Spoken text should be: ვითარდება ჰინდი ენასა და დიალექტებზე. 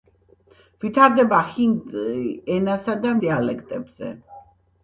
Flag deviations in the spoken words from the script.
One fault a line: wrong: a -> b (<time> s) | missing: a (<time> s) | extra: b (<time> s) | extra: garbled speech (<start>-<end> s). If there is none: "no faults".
no faults